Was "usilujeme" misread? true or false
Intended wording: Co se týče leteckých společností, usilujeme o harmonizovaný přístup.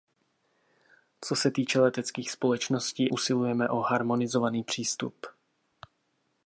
false